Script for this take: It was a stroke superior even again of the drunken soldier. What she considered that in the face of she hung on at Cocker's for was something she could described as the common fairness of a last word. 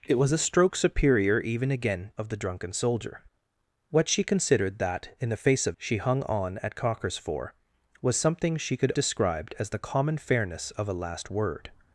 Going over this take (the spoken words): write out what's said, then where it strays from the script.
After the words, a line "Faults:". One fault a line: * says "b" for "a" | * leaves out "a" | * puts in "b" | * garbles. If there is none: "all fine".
It was a stroke superior even again of the drunken soldier. What she considered that in the face of she hung on at Cocker's for was something she could described as the common fairness of a last word.
Faults:
all fine